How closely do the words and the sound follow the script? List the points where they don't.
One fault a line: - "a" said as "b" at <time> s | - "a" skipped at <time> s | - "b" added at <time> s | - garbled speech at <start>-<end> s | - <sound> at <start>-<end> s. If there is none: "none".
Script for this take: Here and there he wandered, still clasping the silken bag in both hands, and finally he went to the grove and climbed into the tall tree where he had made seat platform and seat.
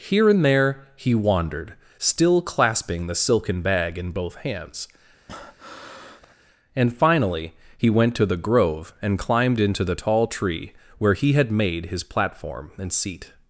- breath at 5.3-6.3 s
- "seat" said as "his" at 11.8 s